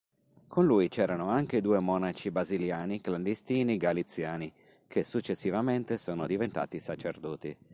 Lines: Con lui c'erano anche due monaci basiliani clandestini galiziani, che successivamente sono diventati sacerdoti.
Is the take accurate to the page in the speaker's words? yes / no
yes